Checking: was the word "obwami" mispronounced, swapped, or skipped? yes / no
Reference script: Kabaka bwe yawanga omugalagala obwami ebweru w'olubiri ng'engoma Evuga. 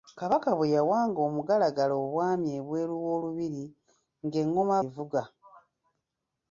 no